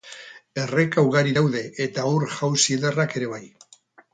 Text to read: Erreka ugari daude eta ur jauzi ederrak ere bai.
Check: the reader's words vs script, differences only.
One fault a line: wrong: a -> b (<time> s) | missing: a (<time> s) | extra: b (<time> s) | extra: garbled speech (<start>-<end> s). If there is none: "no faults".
no faults